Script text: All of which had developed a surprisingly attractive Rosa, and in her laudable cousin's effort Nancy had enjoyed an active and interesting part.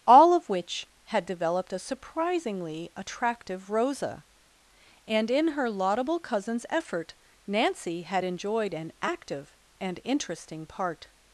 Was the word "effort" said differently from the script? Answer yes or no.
no